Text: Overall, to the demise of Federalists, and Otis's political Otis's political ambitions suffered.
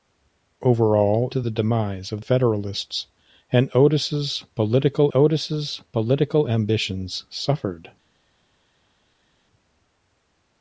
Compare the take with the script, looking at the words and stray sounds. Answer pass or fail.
pass